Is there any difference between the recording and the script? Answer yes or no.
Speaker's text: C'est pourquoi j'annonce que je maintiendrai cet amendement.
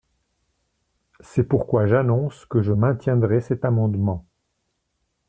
no